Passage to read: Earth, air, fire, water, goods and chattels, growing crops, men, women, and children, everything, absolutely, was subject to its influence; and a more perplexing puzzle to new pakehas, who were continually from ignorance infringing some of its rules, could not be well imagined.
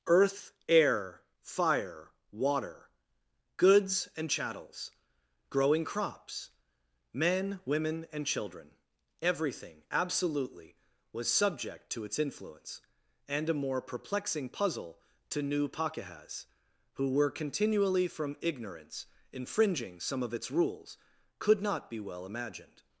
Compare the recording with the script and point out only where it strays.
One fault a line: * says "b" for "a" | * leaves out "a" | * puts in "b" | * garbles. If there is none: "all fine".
all fine